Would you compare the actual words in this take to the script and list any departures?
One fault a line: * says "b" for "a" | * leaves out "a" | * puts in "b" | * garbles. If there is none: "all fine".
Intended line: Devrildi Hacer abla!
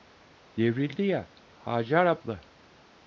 * puts in "ya"